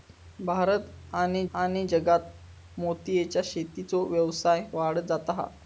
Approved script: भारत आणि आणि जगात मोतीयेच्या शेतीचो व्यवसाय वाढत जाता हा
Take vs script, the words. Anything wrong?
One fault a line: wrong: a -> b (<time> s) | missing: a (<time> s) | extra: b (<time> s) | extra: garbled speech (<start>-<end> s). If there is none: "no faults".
no faults